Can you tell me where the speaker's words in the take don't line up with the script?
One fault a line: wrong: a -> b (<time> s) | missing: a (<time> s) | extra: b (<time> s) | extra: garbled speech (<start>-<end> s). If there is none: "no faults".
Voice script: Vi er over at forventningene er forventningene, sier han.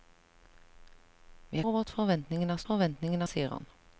no faults